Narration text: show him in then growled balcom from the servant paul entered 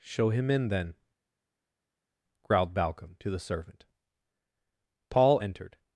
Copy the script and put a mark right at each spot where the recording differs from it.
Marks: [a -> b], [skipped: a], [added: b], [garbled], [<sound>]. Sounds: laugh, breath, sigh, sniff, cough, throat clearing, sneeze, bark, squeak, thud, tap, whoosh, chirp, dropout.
show him in then growled balcom [from -> to] the servant paul entered